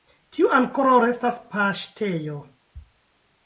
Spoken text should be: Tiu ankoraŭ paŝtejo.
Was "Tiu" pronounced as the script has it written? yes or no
yes